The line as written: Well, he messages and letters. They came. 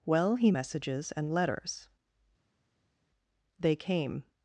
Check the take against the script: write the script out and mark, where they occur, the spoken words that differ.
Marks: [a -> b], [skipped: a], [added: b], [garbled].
Well, he messages and letters. They came.